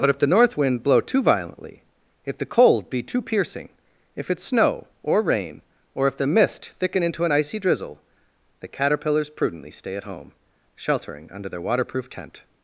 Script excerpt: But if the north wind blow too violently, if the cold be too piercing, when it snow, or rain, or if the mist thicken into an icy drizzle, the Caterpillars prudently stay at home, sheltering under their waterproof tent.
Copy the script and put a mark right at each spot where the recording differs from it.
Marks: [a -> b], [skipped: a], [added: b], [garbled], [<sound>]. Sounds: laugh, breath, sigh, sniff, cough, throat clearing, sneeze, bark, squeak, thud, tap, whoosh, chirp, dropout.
But if the north wind blow too violently, if the cold be too piercing, [when -> if] it snow, or rain, or if the mist thicken into an icy drizzle, the Caterpillars prudently stay at home, sheltering under their waterproof tent.